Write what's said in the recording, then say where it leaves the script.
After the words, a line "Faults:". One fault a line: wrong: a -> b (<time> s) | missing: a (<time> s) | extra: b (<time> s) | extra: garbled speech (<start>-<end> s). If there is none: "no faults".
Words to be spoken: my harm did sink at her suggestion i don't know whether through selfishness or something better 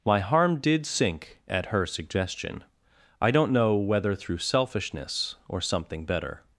my harm did sink at her suggestion i don't know whether through selfishness or something better
Faults:
no faults